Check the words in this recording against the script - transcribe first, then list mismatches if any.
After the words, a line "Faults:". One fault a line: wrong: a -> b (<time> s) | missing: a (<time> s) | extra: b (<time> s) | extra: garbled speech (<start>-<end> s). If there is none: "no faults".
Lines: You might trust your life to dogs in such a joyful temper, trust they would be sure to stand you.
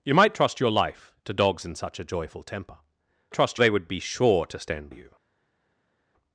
You might trust your life to dogs in such a joyful temper, trust they would be sure to stand you.
Faults:
no faults